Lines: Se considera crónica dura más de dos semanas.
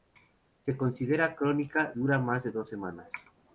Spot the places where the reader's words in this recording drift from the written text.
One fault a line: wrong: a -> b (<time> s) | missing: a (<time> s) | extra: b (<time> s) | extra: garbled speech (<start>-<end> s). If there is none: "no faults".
no faults